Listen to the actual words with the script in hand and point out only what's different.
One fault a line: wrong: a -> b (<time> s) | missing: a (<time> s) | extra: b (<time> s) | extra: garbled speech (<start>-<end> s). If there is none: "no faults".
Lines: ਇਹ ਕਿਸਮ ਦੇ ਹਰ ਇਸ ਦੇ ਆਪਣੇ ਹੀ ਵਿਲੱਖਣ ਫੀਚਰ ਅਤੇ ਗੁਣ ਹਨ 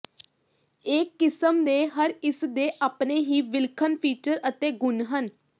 no faults